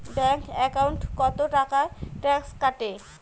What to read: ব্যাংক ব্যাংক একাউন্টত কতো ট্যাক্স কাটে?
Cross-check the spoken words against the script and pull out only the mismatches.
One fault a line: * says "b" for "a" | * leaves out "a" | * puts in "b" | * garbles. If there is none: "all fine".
* leaves out "ব্যাংক"
* puts in "টাকা"